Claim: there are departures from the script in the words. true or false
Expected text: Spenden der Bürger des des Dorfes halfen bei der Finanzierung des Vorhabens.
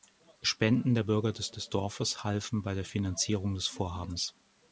false